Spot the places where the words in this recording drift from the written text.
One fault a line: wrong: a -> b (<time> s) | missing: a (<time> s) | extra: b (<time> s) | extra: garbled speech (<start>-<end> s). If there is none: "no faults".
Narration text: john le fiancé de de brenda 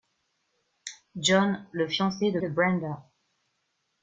no faults